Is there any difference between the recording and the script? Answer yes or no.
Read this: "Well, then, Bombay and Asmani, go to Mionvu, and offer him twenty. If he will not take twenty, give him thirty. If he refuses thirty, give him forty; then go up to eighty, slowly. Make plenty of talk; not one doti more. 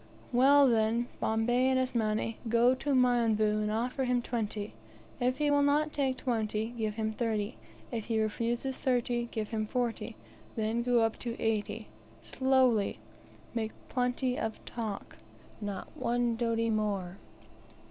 no